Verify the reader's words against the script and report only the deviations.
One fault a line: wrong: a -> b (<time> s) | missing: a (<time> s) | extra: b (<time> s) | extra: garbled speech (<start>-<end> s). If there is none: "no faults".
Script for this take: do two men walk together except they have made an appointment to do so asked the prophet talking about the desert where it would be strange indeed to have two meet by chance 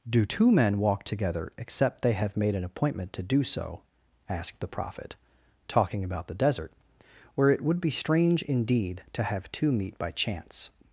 no faults